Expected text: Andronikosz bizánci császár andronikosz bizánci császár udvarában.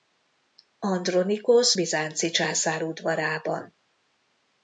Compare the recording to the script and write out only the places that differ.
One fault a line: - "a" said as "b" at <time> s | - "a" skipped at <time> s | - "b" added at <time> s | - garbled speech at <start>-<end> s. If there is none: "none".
- "andronikosz bizánci császár" skipped at 2.8 s